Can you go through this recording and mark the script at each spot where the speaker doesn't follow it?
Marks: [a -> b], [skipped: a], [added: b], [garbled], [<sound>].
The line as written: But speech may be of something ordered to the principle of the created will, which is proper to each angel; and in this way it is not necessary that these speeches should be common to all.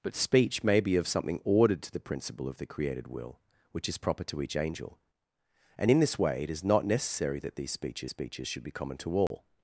But speech may be of something ordered to the principle of the created will, which is proper to each angel; and in this way it is not necessary that these speeches [added: speeches] should be common to all. [dropout]